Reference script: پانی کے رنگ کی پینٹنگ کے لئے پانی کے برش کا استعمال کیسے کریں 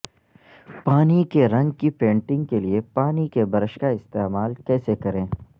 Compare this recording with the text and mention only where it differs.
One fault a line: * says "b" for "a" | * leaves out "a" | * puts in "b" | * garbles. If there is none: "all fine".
all fine